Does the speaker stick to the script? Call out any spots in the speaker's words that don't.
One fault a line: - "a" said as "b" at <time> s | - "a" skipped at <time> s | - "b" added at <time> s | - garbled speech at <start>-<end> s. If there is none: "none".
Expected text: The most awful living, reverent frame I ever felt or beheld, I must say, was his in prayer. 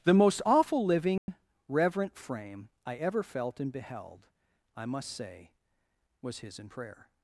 - "or" said as "and" at 3.6 s